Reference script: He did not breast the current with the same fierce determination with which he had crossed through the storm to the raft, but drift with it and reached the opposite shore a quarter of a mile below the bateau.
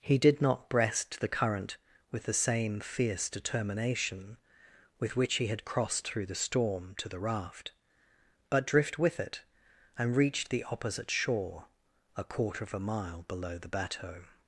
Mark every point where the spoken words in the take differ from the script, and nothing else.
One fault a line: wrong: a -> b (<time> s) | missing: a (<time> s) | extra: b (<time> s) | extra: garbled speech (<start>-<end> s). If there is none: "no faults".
no faults